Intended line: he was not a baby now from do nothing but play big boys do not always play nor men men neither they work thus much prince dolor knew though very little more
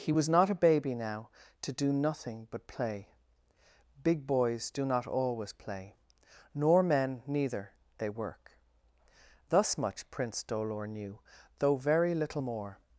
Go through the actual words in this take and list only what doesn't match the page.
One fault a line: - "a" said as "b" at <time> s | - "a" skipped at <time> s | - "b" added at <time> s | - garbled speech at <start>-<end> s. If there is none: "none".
- "from" said as "to" at 1.6 s
- "men" skipped at 7.2 s